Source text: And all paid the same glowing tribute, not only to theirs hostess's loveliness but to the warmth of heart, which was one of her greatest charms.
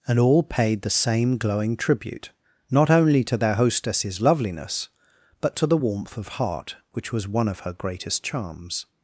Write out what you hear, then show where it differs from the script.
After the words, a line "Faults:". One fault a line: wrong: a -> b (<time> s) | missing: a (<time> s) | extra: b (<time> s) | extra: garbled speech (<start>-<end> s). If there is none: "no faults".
And all paid the same glowing tribute, not only to their hostess's loveliness but to the warmth of heart, which was one of her greatest charms.
Faults:
wrong: theirs -> their (3.4 s)